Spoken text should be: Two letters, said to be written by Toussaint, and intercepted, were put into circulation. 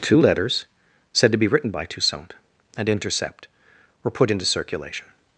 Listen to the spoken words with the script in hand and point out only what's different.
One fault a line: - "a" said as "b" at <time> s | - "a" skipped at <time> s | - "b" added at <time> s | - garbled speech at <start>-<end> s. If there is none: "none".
- "intercepted" said as "intercept" at 2.9 s